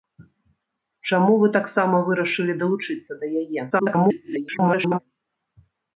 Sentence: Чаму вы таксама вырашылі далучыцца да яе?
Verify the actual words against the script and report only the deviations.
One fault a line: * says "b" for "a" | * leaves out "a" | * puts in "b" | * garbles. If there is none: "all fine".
* garbles